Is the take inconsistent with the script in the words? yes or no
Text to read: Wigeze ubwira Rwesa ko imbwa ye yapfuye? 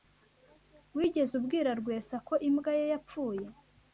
no